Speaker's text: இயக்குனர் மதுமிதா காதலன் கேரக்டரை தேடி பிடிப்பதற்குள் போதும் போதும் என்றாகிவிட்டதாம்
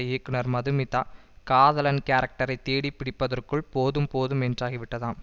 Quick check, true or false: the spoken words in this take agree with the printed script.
true